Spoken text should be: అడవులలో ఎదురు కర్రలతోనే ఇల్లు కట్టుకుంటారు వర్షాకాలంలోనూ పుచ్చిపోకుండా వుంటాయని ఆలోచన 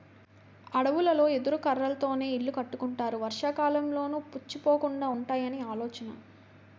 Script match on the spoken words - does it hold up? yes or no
yes